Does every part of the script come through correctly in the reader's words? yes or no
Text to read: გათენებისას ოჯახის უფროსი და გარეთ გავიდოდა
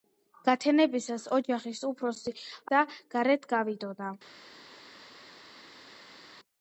yes